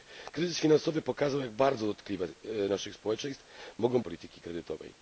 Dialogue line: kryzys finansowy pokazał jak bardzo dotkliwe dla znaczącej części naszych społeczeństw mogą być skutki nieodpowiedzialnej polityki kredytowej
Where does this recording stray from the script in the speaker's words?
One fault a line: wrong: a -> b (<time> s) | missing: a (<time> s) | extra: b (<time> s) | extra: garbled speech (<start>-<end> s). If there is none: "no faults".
missing: dla znaczącej części (2.3 s)
missing: być skutki nieodpowiedzialnej (4.0 s)